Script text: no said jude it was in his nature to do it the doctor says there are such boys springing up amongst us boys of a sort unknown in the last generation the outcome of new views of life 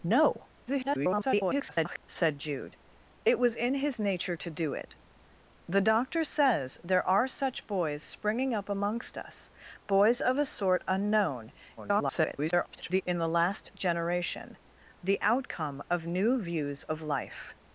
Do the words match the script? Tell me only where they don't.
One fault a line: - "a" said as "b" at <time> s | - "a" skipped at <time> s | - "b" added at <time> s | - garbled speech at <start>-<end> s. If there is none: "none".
- garbled speech at 0.7-2.0 s
- garbled speech at 11.8-13.0 s